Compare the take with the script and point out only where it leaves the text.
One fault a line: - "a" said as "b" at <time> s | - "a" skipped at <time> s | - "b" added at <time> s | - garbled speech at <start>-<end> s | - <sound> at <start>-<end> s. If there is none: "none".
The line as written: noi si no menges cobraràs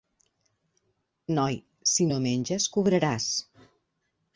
none